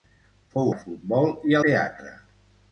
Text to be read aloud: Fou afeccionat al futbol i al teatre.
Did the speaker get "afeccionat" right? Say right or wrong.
wrong